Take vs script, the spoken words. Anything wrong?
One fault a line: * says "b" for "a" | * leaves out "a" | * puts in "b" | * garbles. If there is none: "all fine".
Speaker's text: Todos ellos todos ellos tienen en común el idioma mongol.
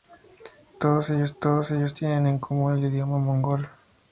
all fine